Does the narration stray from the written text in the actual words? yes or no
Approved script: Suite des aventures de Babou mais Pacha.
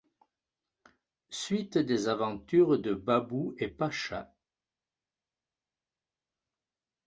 yes